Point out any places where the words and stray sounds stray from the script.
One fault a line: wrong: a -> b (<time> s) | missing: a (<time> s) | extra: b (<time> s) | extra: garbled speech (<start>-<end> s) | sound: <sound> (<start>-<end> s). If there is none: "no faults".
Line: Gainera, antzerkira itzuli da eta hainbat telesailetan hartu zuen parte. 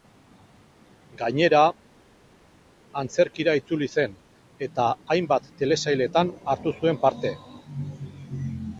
wrong: da -> zen (4.0 s)